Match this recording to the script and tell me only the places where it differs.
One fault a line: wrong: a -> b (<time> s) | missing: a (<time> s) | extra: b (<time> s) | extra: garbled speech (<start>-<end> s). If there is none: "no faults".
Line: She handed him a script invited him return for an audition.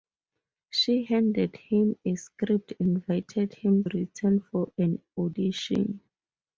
no faults